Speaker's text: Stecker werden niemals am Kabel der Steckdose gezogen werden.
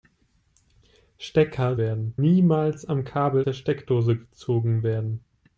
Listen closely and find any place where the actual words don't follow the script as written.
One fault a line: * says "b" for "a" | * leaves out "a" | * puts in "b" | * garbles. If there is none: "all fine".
all fine